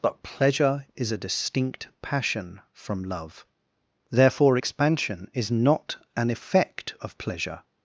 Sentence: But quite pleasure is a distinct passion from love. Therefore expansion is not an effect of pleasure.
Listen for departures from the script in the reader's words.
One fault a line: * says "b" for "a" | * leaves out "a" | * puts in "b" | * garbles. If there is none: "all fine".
* leaves out "quite"